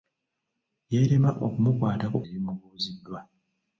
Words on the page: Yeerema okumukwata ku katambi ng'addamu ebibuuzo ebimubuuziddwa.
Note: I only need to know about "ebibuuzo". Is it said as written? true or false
false